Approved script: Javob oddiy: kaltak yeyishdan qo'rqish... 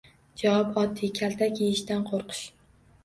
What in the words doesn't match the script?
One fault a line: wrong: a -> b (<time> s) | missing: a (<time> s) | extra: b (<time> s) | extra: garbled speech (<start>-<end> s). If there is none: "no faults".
no faults